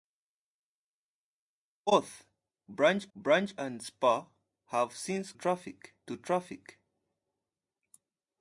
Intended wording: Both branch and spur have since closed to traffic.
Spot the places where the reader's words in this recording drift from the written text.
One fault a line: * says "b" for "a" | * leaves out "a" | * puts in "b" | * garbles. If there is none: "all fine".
* puts in "branch"
* says "traffic" for "closed"